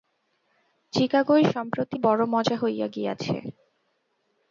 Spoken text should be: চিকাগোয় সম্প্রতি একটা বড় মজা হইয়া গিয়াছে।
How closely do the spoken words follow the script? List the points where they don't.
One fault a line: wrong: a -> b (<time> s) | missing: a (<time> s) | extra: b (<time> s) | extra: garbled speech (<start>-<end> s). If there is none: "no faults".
missing: একটা (2.0 s)